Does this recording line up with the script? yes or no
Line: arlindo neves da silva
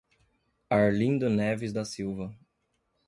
yes